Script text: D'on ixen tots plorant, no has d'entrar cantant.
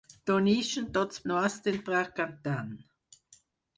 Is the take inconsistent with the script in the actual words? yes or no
yes